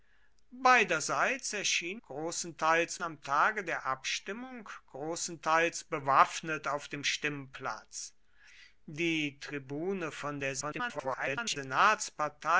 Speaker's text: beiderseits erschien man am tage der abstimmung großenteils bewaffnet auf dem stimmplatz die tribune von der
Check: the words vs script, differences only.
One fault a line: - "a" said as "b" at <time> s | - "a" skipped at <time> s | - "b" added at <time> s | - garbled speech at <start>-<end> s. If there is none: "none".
- "man" said as "großenteils" at 2.1 s
- garbled speech at 10.6-11.6 s